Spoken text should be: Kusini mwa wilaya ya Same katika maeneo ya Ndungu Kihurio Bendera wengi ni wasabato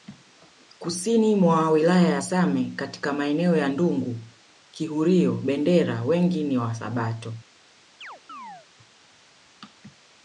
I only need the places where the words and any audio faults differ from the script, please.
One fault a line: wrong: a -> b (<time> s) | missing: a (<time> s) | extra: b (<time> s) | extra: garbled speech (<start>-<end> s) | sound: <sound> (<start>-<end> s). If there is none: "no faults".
sound: chirp (8.0-8.7 s)